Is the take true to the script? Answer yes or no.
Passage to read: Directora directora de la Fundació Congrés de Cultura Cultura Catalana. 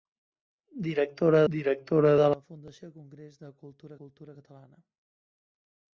yes